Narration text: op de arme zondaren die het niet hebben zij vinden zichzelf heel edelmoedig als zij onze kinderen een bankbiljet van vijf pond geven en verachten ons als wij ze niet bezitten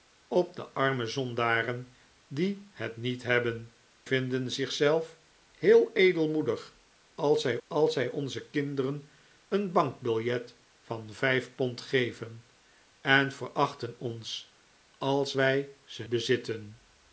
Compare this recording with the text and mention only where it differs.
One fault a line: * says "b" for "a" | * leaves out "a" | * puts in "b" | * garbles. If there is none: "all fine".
* leaves out "zij"
* puts in "als zij"
* leaves out "niet"